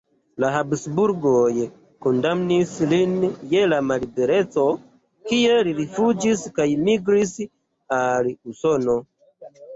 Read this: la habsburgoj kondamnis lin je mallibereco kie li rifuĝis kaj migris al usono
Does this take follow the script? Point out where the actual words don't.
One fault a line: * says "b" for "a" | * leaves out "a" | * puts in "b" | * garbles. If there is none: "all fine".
all fine